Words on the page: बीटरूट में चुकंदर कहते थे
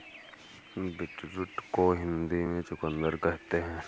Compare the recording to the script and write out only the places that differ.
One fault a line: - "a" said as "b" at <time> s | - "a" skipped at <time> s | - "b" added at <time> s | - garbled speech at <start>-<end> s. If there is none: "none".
- "को हिंदी" added at 1.7 s
- "थे" said as "हैं" at 3.6 s